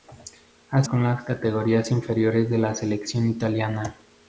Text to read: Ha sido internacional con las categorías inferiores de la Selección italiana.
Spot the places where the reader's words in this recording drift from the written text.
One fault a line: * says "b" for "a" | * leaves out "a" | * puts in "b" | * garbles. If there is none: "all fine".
* leaves out "sido internacional"